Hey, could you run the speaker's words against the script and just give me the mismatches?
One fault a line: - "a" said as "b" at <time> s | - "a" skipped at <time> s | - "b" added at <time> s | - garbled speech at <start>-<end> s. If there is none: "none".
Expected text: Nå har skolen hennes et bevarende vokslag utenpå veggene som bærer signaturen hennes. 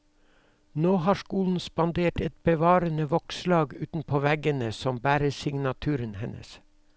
- "hennes" said as "spandert" at 1.6 s